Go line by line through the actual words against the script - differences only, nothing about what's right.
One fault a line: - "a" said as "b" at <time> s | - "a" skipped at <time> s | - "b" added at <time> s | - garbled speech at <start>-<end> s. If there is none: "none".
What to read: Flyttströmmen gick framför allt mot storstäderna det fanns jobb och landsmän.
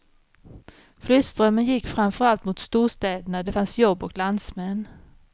none